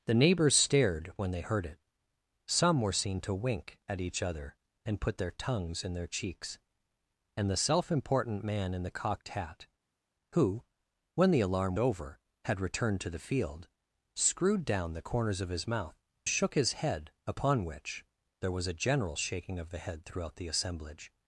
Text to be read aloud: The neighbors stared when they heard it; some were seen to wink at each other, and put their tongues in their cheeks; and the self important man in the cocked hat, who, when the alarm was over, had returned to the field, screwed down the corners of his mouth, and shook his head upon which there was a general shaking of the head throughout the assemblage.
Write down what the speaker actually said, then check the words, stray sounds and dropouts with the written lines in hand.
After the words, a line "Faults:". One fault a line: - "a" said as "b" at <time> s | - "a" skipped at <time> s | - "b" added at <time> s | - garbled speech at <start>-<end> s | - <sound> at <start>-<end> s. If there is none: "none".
The neighbors stared when they heard it; some were seen to wink at each other, and put their tongues in their cheeks; and the self important man in the cocked hat, who, when the alarm over, had returned to the field, screwed down the corners of his mouth, shook his head upon which there was a general shaking of the head throughout the assemblage.
Faults:
- "was" skipped at 11.8 s
- "and" skipped at 16.0 s